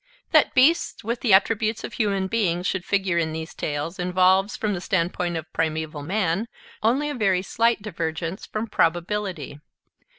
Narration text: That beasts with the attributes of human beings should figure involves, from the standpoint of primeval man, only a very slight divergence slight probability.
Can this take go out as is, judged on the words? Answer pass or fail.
fail